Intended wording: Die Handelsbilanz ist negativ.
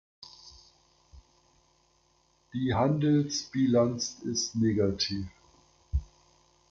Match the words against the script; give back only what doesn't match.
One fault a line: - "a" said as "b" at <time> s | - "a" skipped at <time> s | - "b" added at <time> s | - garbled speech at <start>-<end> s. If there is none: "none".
none